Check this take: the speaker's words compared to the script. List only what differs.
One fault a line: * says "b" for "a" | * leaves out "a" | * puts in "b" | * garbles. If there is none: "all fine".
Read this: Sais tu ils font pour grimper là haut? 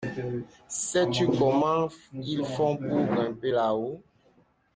* puts in "comment"